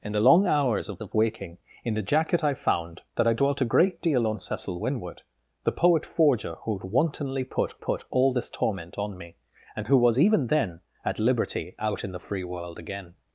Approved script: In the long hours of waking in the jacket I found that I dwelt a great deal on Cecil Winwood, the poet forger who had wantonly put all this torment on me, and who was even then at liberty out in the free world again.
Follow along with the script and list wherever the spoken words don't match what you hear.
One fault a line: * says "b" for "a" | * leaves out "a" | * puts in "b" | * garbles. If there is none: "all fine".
* puts in "of"
* puts in "put"